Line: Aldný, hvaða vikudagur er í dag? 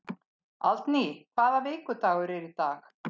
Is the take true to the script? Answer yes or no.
yes